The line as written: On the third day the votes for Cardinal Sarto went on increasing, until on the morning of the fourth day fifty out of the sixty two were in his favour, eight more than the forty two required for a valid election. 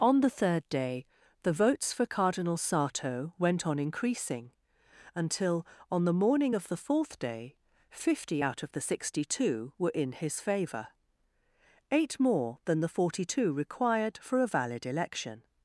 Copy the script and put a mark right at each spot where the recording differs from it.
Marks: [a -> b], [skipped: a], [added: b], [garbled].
On the third day the votes for Cardinal Sarto went on increasing, until on the morning of the fourth day fifty out of the sixty two were in his favour, eight more than the forty two required for a valid election.